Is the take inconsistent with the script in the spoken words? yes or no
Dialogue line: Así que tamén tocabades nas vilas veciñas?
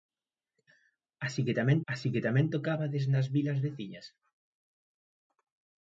yes